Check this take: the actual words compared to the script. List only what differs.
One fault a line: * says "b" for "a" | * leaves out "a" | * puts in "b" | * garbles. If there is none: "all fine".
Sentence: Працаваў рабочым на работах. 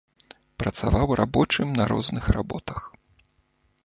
* puts in "розных"